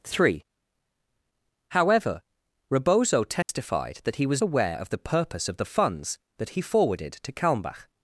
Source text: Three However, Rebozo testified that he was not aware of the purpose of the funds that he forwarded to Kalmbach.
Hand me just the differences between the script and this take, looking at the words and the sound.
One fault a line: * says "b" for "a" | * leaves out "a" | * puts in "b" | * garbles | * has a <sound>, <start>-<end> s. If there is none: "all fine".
* has a dropout, 3.4-3.5 s
* leaves out "not"